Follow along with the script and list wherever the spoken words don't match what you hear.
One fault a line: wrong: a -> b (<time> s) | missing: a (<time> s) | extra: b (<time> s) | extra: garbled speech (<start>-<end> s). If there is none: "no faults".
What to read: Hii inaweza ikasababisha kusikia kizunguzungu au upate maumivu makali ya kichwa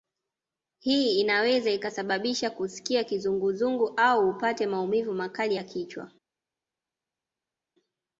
no faults